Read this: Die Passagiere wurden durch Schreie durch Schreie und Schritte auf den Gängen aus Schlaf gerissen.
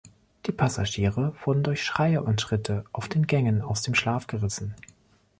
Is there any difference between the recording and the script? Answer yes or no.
yes